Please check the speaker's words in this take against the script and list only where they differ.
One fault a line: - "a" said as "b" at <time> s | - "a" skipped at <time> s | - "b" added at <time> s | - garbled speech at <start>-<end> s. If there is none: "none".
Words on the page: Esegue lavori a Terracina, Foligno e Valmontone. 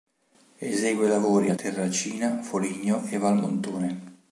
none